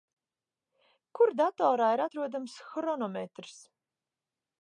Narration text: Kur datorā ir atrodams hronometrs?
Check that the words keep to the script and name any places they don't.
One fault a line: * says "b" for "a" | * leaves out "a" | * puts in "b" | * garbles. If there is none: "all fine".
all fine